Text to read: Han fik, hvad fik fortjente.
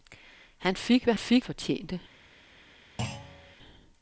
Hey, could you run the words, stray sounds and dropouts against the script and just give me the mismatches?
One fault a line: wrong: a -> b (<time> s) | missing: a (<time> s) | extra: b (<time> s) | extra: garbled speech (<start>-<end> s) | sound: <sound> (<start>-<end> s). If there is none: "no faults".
sound: thud (3.0-3.6 s)